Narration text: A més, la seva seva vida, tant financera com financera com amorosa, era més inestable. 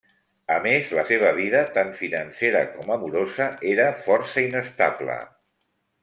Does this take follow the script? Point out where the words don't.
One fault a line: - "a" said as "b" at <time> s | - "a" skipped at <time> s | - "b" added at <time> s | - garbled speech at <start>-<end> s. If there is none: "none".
- "seva" skipped at 1.3 s
- "financera com" skipped at 2.9 s
- "més" said as "força" at 4.1 s